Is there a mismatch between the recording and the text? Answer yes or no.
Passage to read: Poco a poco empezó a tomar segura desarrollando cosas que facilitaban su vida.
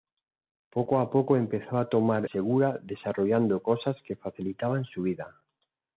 no